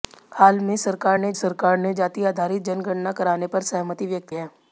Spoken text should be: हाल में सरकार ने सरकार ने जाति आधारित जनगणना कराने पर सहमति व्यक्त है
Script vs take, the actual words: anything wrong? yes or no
no